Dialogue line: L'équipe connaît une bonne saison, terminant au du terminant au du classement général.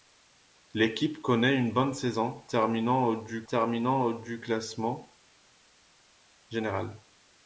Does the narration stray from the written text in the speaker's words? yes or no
no